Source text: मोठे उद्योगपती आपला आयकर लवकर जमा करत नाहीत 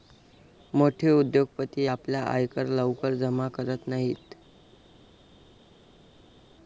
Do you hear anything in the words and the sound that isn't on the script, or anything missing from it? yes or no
no